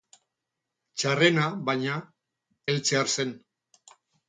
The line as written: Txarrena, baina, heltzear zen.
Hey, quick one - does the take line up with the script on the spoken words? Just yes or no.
yes